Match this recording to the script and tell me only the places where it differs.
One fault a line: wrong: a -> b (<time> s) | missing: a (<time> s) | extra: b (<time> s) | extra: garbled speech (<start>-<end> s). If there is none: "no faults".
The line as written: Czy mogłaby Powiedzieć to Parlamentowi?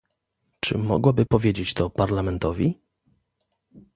no faults